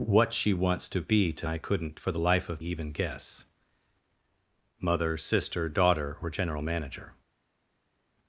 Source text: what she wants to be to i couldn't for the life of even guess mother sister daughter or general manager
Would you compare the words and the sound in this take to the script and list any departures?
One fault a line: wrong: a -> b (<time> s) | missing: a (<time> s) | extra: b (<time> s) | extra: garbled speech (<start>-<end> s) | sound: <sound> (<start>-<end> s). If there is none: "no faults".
no faults